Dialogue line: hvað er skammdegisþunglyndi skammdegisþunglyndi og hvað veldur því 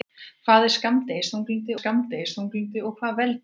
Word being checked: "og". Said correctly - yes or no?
yes